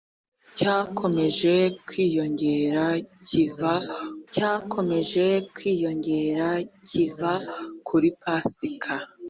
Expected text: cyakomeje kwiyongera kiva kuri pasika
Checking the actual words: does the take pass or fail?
fail